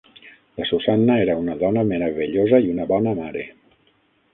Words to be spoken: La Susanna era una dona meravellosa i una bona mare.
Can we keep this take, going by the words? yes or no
yes